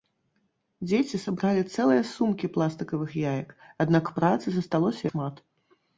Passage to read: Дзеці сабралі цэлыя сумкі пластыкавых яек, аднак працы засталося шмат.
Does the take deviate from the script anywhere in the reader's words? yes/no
no